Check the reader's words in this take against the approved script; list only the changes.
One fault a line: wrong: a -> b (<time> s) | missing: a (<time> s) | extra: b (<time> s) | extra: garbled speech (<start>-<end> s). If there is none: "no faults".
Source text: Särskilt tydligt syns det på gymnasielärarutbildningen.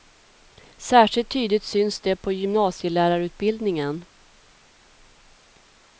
no faults